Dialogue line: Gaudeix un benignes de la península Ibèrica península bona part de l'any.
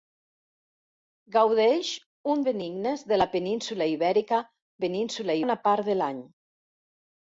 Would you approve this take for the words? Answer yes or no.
yes